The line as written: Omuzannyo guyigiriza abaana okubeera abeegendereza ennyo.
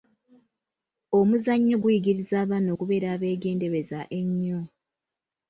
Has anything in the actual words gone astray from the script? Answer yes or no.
no